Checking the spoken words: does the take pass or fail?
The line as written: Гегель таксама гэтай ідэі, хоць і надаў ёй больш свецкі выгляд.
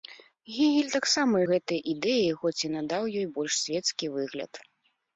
pass